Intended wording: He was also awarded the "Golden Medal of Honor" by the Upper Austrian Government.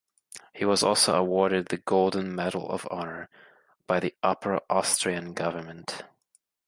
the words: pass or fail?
pass